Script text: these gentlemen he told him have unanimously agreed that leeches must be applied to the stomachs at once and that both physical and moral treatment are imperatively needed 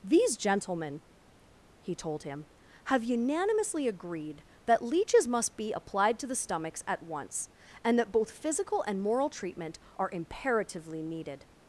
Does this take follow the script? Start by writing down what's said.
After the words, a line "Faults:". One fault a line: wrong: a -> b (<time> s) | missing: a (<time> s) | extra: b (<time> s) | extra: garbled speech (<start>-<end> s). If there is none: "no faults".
these gentlemen he told him have unanimously agreed that leeches must be applied to the stomachs at once and that both physical and moral treatment are imperatively needed
Faults:
no faults